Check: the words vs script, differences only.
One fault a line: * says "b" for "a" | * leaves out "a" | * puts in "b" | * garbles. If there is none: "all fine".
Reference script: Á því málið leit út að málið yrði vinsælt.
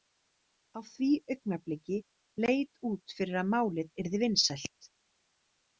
* says "augnabliki" for "málið"
* puts in "fyrir"